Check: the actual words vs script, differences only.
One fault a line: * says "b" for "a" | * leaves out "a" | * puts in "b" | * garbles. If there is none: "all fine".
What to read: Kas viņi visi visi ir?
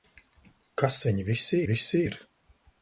all fine